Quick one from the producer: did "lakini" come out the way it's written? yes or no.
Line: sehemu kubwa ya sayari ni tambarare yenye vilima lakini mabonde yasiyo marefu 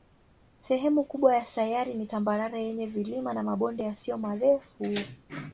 no